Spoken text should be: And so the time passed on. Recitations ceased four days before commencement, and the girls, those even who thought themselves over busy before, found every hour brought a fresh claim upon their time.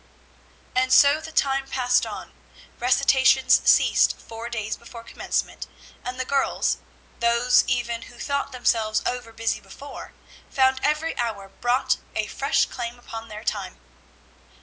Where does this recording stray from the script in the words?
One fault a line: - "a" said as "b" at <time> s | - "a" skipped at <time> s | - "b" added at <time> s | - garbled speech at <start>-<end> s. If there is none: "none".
none